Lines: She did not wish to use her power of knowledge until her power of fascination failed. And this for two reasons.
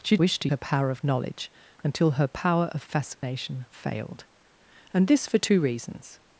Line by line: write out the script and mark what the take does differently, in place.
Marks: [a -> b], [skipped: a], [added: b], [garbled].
She [skipped: did not] wish to [skipped: use] her power of knowledge until her power of fascination failed. And this for two reasons.